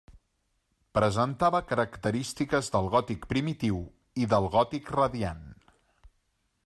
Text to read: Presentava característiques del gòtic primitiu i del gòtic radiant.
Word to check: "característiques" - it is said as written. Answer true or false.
true